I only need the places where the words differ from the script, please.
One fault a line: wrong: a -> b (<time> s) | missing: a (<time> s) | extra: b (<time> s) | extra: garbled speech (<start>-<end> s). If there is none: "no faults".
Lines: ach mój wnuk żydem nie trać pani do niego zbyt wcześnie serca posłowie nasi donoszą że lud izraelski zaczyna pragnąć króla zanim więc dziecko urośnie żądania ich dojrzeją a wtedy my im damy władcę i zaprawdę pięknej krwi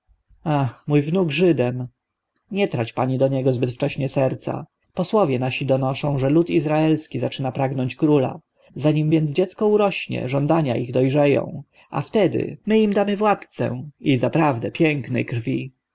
no faults